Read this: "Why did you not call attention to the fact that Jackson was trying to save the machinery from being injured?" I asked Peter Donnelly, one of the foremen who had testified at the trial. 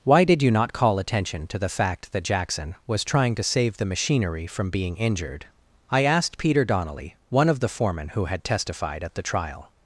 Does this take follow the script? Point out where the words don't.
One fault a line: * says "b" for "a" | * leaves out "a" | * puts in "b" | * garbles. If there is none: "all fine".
all fine